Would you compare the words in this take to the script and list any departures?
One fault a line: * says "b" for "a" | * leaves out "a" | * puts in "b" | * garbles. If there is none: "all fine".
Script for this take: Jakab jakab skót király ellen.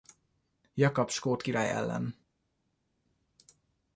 * leaves out "jakab"